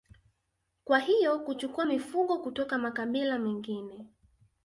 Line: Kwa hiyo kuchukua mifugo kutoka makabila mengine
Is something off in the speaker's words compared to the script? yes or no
no